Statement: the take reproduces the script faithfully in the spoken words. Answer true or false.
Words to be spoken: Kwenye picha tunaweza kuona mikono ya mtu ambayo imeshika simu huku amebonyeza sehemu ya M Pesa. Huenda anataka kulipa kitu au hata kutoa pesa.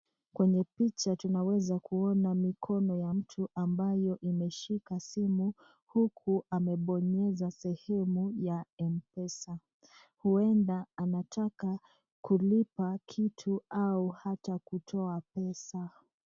true